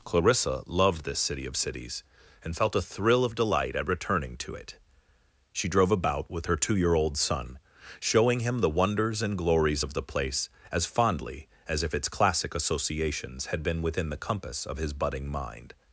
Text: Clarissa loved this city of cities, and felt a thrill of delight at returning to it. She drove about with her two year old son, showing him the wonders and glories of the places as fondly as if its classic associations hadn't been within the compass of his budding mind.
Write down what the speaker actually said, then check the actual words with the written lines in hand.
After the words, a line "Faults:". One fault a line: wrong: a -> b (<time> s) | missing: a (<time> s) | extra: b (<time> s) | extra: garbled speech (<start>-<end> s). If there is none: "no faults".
Clarissa loved this city of cities, and felt a thrill of delight at returning to it. She drove about with her two year old son, showing him the wonders and glories of the place as fondly as if its classic associations had been within the compass of his budding mind.
Faults:
wrong: places -> place (10.0 s)
wrong: hadn't -> had (13.5 s)